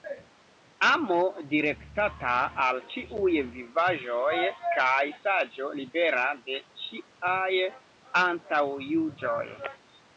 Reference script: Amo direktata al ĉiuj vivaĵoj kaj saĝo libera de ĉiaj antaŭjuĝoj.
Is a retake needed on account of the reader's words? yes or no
no